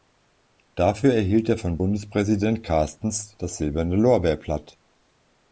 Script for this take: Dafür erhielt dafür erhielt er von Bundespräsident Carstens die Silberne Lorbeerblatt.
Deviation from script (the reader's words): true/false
true